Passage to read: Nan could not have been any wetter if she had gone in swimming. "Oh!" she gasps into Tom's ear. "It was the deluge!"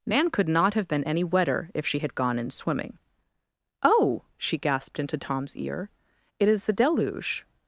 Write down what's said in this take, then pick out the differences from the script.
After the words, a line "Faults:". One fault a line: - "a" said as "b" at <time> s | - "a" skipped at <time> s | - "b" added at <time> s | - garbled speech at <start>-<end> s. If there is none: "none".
Nan could not have been any wetter if she had gone in swimming. "Oh!" she gasped into Tom's ear. "It is the deluge!"
Faults:
- "gasps" said as "gasped" at 4.6 s
- "was" said as "is" at 6.5 s